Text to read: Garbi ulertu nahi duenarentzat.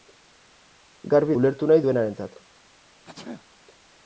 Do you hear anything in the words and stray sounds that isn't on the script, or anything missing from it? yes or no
yes